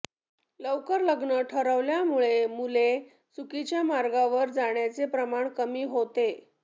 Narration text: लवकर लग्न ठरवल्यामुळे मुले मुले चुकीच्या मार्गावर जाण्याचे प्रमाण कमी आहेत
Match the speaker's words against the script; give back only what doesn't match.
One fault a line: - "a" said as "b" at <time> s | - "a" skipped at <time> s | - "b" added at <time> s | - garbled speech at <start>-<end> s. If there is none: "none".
- "मुले" skipped at 2.9 s
- "आहेत" said as "होते" at 5.9 s